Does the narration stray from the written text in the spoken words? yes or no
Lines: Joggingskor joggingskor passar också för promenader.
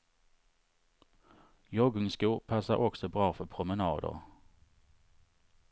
yes